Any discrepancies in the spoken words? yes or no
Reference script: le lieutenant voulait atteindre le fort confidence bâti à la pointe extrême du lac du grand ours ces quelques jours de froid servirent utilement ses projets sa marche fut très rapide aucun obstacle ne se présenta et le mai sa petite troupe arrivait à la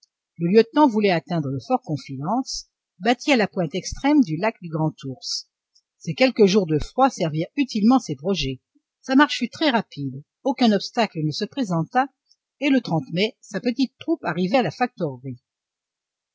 no